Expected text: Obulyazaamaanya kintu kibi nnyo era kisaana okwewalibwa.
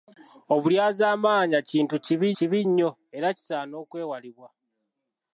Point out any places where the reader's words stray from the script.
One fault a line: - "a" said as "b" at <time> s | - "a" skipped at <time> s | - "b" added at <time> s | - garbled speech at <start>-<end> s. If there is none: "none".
- "kibi" added at 2.4 s